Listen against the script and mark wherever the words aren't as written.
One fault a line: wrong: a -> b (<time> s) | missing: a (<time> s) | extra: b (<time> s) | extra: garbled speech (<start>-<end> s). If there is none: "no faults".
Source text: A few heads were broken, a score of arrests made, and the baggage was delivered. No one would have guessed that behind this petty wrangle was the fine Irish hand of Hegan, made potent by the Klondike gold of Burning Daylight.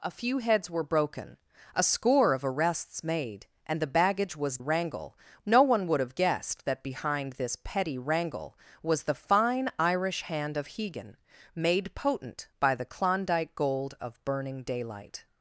wrong: delivered -> wrangle (4.6 s)